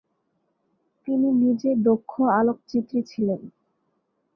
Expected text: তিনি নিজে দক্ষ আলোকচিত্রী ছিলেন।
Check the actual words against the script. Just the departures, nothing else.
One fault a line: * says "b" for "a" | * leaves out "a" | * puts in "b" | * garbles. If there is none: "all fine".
all fine